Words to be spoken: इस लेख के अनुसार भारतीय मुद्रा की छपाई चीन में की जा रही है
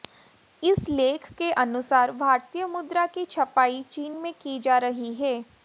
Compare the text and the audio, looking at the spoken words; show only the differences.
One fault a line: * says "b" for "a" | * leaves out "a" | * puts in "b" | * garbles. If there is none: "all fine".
all fine